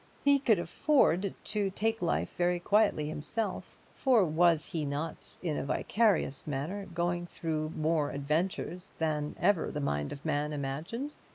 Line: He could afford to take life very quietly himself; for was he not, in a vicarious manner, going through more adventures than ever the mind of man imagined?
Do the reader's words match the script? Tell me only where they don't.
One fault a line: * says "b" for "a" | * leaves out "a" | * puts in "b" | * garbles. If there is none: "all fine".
all fine